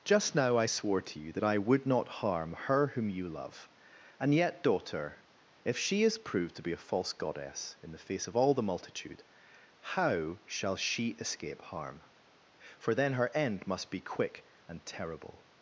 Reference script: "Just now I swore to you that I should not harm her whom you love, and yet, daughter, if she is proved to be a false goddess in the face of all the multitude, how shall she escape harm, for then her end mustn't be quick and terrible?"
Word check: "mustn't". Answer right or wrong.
wrong